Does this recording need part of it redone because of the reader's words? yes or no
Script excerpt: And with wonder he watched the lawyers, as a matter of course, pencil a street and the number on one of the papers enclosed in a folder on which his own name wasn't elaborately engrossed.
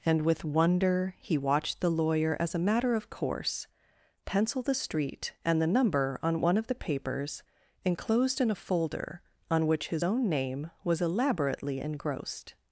yes